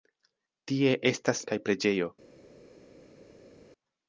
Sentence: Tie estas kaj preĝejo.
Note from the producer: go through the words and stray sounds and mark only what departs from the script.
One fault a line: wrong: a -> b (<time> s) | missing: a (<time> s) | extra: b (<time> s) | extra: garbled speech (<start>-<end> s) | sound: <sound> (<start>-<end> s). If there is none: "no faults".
no faults